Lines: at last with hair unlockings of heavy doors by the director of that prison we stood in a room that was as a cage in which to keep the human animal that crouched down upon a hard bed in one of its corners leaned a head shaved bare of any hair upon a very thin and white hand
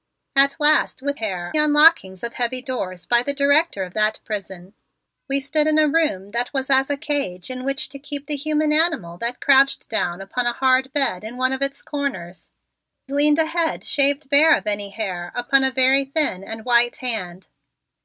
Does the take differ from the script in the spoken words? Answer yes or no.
no